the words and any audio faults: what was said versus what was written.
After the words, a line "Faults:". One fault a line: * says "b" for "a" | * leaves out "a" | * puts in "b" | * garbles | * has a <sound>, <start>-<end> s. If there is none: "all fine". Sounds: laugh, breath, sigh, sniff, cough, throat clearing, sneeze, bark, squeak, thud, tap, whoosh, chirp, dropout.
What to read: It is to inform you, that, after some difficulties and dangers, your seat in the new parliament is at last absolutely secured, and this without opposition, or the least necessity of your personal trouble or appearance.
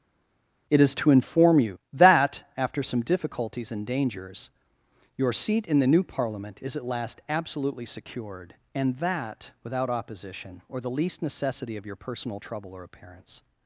It is to inform you, that, after some difficulties and dangers, your seat in the new parliament is at last absolutely secured, and that without opposition, or the least necessity of your personal trouble or appearance.
Faults:
* says "that" for "this"